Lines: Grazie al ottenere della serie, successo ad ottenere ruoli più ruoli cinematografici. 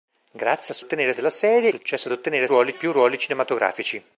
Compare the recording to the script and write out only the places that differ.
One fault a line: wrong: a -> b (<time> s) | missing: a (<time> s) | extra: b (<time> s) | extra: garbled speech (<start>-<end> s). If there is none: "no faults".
no faults